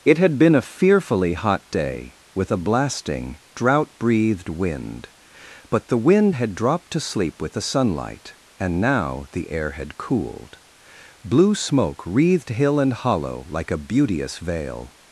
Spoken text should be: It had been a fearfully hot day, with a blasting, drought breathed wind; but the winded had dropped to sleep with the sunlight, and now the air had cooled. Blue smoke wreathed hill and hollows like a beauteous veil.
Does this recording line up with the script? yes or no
no